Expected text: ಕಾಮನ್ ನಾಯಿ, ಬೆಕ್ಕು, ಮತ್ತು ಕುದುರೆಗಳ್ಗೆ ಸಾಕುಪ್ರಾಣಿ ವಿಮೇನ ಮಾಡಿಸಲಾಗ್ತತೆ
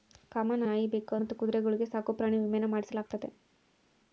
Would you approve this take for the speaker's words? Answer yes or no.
yes